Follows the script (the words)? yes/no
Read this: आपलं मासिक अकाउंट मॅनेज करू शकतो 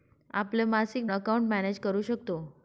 yes